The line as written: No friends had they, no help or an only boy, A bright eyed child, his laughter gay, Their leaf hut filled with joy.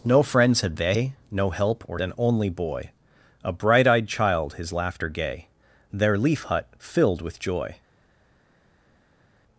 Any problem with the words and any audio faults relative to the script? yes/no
no